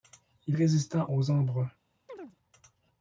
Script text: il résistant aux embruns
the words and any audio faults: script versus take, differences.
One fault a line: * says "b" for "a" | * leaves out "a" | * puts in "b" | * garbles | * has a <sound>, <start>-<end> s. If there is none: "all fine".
* has a chirp, 2.1-2.4 s